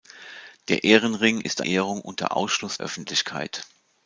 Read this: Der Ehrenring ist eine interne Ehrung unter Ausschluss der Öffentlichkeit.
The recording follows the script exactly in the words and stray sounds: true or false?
false